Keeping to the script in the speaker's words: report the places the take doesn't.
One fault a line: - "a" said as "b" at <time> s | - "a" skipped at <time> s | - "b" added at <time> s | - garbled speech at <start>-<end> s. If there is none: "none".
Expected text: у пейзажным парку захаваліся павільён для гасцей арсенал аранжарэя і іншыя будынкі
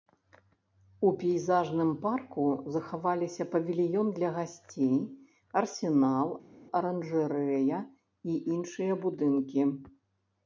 none